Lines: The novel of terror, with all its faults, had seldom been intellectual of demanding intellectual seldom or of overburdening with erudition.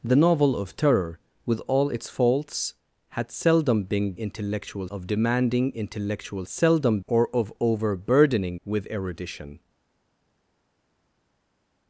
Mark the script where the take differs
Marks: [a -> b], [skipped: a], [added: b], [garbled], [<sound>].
The novel of terror, with all its faults, had seldom been intellectual of demanding intellectual seldom or of overburdening with erudition.